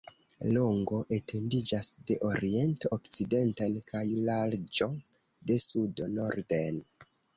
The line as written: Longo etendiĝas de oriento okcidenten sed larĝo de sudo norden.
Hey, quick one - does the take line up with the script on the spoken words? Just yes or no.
no